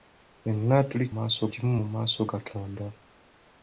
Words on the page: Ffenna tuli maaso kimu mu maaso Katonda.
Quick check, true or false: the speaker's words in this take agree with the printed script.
true